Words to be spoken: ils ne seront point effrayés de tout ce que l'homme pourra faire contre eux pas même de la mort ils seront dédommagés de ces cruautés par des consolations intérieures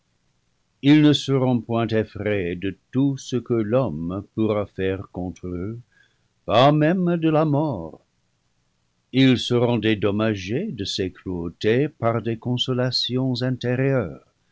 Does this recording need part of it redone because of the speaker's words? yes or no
no